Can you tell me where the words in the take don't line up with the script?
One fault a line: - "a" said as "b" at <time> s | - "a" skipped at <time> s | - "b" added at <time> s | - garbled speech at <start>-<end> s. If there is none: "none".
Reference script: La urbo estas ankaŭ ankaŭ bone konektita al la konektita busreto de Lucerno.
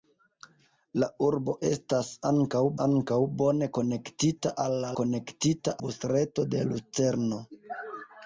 none